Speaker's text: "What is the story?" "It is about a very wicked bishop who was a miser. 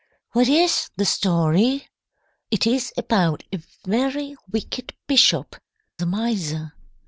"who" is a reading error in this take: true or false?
true